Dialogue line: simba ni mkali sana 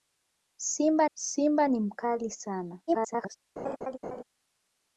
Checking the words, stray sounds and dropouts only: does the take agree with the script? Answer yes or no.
no